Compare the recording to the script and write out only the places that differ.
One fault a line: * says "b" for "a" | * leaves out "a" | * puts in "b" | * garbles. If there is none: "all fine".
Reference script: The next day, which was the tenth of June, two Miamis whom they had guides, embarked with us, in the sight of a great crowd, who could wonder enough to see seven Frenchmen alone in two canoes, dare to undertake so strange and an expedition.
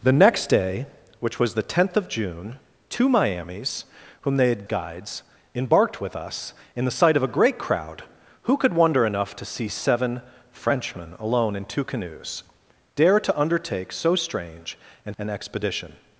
all fine